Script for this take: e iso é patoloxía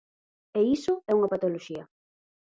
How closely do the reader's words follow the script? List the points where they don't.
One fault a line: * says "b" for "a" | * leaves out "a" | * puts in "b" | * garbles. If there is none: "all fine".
* puts in "unha"